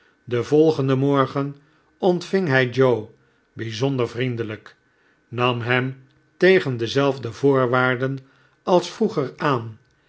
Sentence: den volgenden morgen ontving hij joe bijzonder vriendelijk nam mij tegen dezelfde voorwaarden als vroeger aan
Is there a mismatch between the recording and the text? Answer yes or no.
yes